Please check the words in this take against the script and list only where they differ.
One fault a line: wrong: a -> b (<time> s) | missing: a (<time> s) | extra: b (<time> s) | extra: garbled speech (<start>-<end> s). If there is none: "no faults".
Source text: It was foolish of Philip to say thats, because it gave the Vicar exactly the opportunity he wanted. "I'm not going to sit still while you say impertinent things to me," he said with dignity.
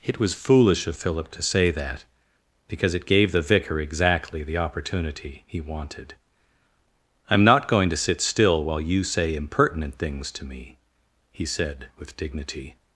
wrong: thats -> that (1.7 s)